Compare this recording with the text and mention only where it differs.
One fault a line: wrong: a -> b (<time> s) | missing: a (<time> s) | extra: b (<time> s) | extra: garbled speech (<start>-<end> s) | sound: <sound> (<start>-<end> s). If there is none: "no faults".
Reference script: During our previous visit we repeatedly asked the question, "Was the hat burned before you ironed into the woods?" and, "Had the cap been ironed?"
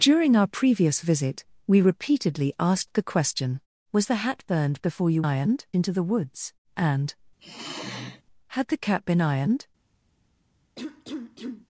sound: sigh (7.4-8.2 s)
sound: cough (10.8-11.7 s)